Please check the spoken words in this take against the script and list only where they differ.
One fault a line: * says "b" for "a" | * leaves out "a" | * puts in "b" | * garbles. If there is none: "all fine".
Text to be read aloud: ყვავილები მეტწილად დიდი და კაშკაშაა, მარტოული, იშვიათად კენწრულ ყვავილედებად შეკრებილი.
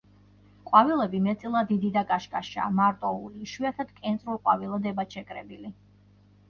all fine